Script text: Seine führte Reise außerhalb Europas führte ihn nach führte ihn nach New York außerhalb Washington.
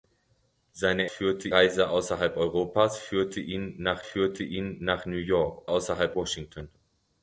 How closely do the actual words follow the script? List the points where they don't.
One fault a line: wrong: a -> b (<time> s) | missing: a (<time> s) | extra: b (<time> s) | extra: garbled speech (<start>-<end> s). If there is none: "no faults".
no faults